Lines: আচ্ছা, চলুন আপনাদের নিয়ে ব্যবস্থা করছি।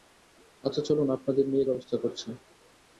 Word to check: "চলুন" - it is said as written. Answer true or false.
true